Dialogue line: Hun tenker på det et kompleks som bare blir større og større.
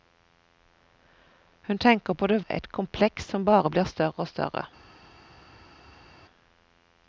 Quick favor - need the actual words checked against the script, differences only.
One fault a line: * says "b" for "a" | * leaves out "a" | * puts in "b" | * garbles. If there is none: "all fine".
all fine